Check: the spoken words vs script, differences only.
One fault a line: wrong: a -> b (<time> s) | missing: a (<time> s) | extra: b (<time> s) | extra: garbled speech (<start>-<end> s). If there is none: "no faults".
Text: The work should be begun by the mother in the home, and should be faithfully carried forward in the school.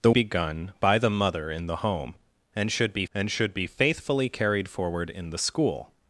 missing: work should be (0.1 s)
extra: and should be (3.1 s)